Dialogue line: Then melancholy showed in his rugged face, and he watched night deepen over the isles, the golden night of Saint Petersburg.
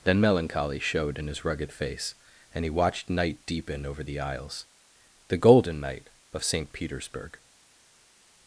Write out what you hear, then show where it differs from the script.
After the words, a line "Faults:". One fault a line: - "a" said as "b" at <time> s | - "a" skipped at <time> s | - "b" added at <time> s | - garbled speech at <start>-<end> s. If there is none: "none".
Then melancholy showed in his rugged face, and he watched night deepen over the isles, the golden night of Saint Petersburg.
Faults:
none